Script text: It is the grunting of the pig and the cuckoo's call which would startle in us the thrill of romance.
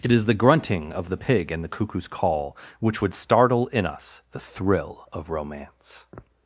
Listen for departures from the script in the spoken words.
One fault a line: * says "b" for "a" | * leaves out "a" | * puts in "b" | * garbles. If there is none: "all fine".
all fine